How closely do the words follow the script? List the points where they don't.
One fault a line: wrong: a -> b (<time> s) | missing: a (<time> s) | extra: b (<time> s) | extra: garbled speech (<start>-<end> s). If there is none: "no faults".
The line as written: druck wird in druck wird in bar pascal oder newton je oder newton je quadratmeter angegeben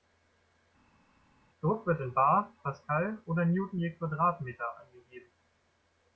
missing: druck wird in (2.1 s)
missing: oder newton je (3.9 s)